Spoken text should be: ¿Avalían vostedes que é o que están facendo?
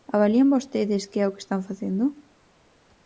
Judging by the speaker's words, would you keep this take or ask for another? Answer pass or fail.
pass